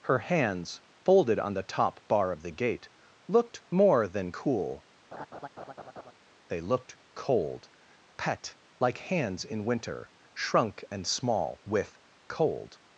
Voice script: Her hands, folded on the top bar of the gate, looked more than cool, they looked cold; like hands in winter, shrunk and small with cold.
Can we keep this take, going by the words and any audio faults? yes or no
no